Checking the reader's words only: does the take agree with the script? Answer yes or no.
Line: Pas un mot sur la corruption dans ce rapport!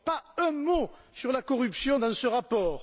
yes